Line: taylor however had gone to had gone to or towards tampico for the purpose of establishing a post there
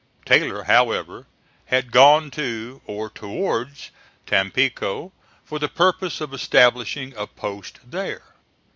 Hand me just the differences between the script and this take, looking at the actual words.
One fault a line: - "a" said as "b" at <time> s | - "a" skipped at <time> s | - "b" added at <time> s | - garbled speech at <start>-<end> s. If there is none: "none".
- "had gone to" skipped at 2.8 s